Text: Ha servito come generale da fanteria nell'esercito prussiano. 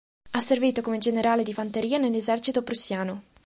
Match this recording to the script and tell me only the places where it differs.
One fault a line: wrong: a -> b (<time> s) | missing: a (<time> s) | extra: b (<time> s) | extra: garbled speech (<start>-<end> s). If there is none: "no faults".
wrong: da -> di (1.4 s)